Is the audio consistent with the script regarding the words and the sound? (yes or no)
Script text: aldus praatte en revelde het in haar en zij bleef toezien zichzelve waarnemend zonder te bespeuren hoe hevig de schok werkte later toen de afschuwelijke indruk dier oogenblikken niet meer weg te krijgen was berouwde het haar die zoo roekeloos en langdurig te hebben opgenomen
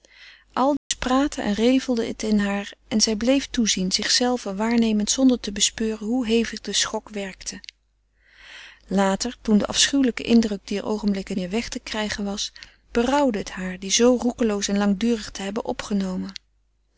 no